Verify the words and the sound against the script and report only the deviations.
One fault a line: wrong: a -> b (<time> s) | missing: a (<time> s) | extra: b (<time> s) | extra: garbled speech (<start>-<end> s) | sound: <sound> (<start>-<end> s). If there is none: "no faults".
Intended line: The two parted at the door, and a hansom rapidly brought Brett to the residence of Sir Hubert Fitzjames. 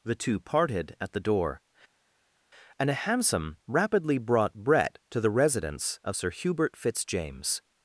no faults